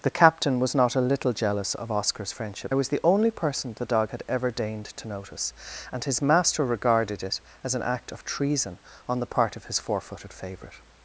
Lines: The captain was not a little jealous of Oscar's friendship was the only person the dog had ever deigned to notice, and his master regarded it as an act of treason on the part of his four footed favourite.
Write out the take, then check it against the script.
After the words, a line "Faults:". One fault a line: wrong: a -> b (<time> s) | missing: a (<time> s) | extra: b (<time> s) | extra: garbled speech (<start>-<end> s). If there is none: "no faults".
The captain was not a little jealous of Oscar's friendship was the only person the dog had ever deigned to notice, and his master regarded it as an act of treason on the part of his four footed favourite.
Faults:
no faults